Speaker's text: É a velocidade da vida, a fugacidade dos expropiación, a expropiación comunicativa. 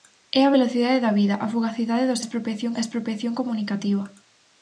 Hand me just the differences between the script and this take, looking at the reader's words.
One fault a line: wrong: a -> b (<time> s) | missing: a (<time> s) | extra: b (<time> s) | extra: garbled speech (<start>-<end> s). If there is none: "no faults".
no faults